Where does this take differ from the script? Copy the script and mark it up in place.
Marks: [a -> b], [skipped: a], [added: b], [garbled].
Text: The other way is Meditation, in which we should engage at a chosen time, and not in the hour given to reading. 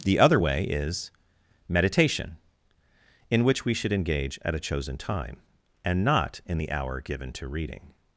The other way is Meditation, in which we should engage at a chosen time, and not in the hour given to reading.